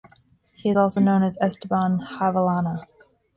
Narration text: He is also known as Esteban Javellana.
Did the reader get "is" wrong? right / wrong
wrong